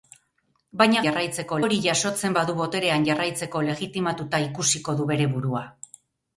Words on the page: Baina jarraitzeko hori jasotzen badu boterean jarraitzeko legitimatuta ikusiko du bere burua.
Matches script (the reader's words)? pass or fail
pass